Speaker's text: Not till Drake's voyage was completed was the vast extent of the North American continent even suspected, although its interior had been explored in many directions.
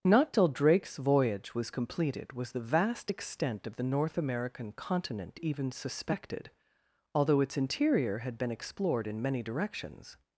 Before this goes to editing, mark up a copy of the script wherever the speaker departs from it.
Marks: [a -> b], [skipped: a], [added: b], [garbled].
Not till Drake's voyage was completed was the vast extent of the North American continent even suspected, although its interior had been explored in many directions.